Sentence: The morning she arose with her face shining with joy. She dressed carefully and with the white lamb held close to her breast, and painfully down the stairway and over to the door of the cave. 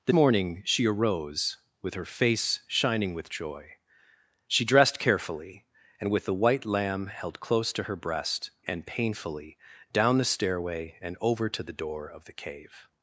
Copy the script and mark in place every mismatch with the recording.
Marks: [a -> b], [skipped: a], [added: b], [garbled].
The morning she arose with her face shining with joy. She dressed carefully and with the white lamb held close to her breast, and painfully down the stairway and over to the door of the cave.